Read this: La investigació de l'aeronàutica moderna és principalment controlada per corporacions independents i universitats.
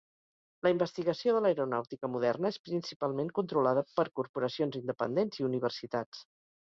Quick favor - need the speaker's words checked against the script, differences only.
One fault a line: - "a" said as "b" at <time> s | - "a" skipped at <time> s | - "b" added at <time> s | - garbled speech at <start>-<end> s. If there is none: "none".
none